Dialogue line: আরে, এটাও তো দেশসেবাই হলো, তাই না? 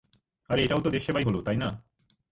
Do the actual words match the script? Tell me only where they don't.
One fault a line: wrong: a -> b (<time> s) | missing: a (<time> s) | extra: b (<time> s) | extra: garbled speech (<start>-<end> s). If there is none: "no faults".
no faults